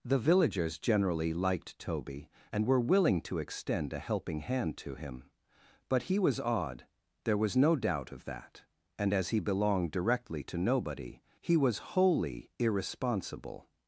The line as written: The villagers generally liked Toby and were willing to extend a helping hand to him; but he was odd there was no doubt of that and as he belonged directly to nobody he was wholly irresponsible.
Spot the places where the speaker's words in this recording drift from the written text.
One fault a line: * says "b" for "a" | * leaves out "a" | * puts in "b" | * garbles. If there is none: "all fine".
all fine